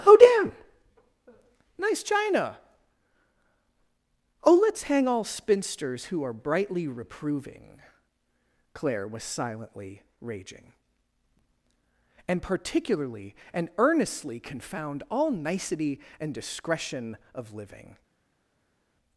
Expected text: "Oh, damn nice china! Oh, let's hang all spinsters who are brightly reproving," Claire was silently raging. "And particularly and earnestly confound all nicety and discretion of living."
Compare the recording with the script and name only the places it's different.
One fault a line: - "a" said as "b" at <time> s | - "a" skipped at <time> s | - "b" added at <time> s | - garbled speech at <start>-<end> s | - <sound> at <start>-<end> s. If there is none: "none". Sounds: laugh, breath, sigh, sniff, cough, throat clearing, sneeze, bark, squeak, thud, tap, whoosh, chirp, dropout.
none